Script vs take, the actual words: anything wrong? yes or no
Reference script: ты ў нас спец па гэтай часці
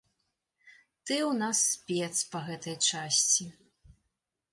no